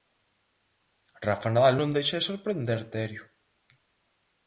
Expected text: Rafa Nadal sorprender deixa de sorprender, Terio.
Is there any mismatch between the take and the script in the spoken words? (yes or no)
yes